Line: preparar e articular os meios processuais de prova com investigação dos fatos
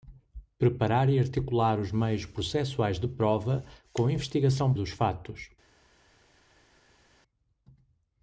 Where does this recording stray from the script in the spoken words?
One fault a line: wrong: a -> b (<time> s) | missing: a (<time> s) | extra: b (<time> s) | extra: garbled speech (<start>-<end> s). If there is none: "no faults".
no faults